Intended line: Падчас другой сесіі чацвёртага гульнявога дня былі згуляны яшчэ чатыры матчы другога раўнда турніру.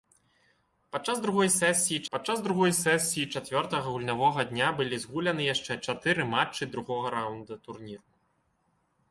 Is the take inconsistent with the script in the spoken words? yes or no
yes